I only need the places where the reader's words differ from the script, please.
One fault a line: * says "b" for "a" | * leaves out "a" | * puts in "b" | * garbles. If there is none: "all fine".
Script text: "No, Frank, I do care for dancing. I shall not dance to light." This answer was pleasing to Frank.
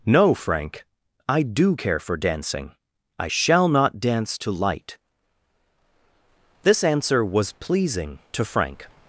all fine